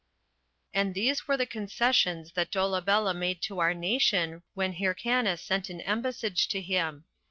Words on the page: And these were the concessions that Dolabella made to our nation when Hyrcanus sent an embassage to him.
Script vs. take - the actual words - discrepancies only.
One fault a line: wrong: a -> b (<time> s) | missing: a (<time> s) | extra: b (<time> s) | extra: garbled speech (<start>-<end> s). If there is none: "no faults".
no faults